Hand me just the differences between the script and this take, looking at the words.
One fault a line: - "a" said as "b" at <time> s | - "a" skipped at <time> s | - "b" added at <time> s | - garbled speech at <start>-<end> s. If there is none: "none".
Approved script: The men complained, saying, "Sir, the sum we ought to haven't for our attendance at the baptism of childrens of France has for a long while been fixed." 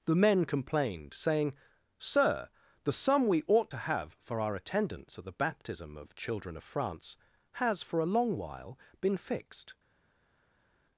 - "haven't" said as "have" at 3.8 s
- "childrens" said as "children" at 6.1 s